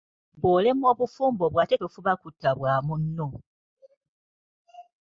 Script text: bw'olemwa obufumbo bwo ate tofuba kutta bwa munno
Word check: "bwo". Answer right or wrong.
right